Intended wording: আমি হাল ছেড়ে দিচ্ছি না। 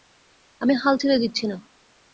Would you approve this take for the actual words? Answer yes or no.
yes